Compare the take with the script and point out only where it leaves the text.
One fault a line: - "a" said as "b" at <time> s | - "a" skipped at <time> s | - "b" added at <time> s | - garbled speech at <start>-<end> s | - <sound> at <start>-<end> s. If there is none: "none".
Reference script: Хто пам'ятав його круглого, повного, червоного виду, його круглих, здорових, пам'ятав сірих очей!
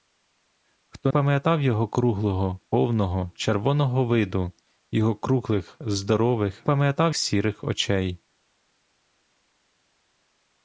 none